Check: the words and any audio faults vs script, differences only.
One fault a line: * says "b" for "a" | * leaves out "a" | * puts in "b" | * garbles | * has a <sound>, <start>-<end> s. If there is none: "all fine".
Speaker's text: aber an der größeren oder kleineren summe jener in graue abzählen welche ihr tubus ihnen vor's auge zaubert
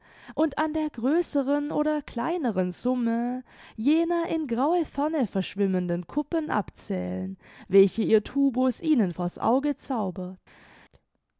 * says "und" for "aber"
* puts in "ferne verschwimmenden kuppen"